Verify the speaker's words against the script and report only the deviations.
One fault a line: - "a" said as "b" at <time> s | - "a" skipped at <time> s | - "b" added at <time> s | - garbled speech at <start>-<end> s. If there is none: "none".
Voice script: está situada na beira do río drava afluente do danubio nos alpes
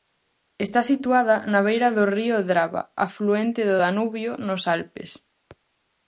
none